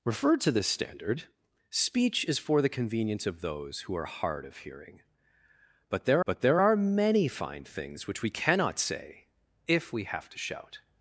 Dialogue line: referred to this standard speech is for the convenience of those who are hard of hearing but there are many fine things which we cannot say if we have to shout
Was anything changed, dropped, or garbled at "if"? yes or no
no